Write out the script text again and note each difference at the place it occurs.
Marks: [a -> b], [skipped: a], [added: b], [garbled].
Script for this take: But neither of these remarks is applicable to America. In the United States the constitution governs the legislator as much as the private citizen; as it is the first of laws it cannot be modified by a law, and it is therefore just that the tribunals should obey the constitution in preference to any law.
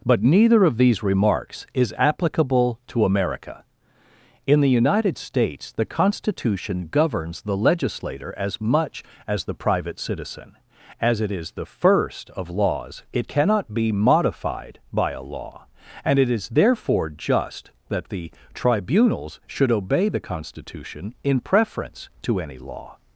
But neither of these remarks is applicable to America. In the United States the constitution governs the legislator as much as the private citizen; as it is the first of laws it cannot be modified by a law, and it is therefore just that the tribunals should obey the constitution in preference to any law.